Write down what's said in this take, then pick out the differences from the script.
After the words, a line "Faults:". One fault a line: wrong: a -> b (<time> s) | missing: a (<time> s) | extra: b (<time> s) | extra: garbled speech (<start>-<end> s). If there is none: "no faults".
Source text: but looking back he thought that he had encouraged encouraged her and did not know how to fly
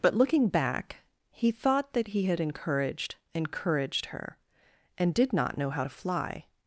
but looking back he thought that he had encouraged encouraged her and did not know how to fly
Faults:
no faults